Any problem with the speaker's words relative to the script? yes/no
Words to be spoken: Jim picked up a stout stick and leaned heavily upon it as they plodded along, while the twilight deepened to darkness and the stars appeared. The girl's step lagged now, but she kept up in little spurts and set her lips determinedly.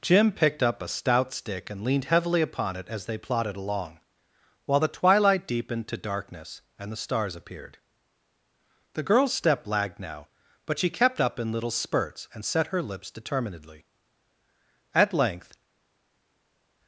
yes